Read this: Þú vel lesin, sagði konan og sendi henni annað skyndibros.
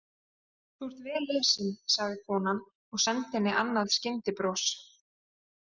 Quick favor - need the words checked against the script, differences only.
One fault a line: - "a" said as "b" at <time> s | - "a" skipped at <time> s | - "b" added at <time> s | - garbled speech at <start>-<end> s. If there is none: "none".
- "ert" added at 0.9 s